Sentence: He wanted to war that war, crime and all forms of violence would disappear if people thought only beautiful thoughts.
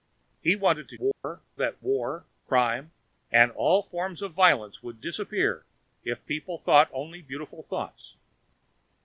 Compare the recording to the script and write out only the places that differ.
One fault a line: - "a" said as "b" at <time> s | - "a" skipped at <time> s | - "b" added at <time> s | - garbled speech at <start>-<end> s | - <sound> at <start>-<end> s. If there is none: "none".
- dropout at 1.1-1.2 s